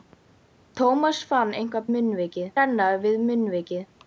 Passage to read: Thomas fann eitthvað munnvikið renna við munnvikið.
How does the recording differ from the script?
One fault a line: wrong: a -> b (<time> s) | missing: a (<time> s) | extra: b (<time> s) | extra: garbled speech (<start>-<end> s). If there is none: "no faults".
no faults